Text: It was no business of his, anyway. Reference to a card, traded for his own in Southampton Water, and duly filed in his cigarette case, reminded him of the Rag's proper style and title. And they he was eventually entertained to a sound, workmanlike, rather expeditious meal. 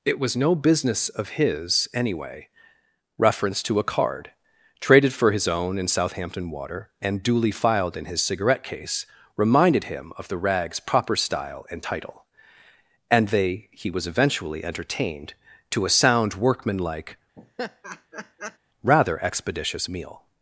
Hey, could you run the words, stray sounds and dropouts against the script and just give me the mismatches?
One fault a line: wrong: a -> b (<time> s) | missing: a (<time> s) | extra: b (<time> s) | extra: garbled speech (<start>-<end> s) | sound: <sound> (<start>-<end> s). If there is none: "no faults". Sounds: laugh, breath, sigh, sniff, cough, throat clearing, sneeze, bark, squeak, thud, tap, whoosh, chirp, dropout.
sound: laugh (17.4-18.6 s)